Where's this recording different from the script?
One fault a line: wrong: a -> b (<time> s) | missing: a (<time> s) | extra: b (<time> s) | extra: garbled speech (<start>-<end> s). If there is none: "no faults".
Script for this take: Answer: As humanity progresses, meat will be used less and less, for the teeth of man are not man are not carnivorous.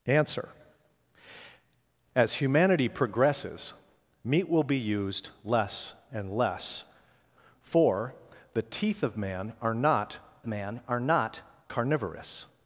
no faults